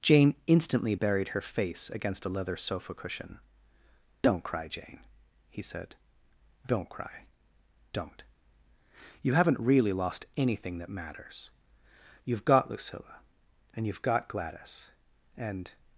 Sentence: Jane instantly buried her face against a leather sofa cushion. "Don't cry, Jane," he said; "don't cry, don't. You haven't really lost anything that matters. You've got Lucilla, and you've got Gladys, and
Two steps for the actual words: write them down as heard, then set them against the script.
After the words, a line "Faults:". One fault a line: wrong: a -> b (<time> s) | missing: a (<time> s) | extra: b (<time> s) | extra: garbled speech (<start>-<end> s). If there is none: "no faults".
Jane instantly buried her face against a leather sofa cushion. "Don't cry, Jane," he said; "don't cry, don't. You haven't really lost anything that matters. You've got Lucilla, and you've got Gladys, and
Faults:
no faults